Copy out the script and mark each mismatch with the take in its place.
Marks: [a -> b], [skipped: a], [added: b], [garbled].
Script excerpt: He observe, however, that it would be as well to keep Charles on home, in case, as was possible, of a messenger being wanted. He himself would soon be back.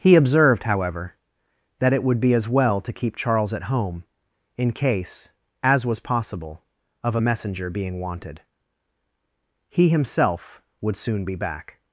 He [observe, -> observed] however, that it would be as well to keep Charles [on -> at] home, in case, as was possible, of a messenger being wanted. He himself would soon be back.